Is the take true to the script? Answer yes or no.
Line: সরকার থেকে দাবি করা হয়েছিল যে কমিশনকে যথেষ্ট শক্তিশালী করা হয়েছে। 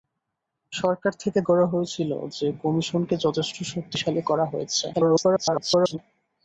no